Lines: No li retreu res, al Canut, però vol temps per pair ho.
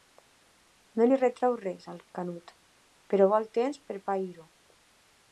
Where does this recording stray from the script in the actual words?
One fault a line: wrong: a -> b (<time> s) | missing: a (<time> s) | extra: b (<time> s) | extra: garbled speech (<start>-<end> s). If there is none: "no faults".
no faults